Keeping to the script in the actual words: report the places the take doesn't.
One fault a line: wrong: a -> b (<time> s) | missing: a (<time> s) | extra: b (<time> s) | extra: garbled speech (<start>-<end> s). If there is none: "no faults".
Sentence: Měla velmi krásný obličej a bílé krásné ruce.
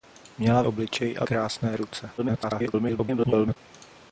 missing: velmi krásný (0.6 s)
missing: bílé (1.3 s)
extra: garbled speech (2.2-3.6 s)